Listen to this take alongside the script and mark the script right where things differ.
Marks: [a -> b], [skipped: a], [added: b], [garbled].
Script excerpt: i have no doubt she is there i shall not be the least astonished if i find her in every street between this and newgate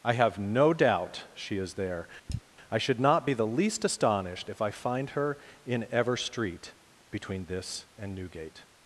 i have no doubt she is there i [shall -> should] not be the least astonished if i find her in [every -> ever] street between this and newgate